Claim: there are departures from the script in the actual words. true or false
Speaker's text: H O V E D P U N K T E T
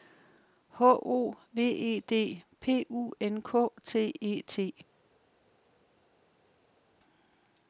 false